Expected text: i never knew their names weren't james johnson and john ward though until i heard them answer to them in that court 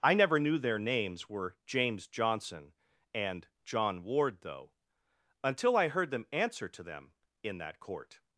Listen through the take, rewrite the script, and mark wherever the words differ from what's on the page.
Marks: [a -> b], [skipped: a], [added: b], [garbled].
i never knew their names [weren't -> were] james johnson and john ward though until i heard them answer to them in that court